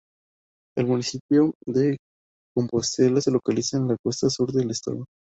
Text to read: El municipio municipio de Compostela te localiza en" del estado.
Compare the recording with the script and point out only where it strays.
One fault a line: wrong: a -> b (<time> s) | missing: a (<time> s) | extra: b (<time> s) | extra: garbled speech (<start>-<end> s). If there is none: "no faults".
missing: municipio (1.5 s)
wrong: te -> se (3.2 s)
extra: la costa sur (3.9 s)